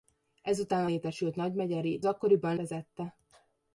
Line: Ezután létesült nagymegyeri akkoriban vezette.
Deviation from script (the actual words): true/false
false